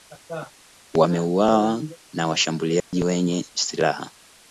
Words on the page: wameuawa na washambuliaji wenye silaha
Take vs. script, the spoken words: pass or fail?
pass